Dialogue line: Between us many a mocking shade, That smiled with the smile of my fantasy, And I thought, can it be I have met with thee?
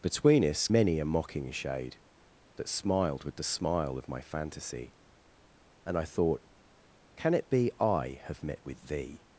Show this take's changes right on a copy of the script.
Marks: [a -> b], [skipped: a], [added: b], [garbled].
Between us many a mocking shade, That smiled with the smile of my fantasy, And I thought, can it be I have met with thee?